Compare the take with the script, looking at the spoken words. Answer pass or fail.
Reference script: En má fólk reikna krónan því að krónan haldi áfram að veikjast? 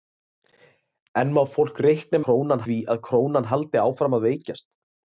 pass